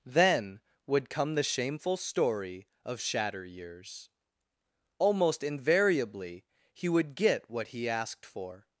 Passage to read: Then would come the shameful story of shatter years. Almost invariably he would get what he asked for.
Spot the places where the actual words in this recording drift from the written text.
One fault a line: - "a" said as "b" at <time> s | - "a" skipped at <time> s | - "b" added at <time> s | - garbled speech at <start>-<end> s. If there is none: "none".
none